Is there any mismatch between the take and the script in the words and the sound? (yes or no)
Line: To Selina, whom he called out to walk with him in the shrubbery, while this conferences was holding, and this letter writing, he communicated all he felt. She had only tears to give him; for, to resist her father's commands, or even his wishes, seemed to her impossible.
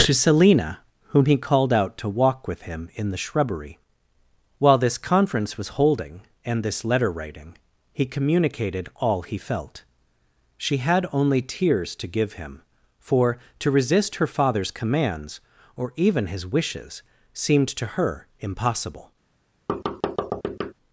yes